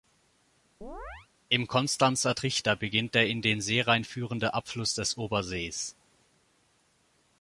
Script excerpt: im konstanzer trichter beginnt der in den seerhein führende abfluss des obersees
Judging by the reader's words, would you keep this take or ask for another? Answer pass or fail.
pass